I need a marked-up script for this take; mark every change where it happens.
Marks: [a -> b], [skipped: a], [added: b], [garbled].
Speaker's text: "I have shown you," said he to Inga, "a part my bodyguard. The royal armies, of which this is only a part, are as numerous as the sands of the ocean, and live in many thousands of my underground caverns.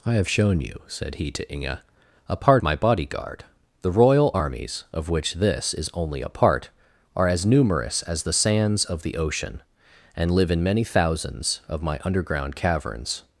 "I have shown you," said he to Inga, "a part my bodyguard. The royal armies, of which this is only a part, are as numerous as the sands of the ocean, and live in many thousands of my underground caverns.